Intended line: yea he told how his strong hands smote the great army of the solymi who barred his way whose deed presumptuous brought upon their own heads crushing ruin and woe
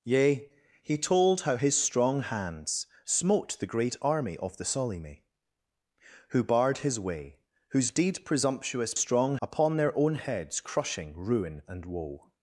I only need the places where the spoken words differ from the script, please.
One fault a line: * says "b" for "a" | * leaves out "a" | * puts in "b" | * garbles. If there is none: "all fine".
* says "strong" for "brought"